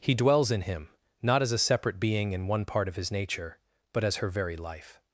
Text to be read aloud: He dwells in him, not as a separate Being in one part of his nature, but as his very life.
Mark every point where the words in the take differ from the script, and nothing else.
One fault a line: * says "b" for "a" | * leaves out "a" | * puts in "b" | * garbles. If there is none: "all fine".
* says "her" for "his"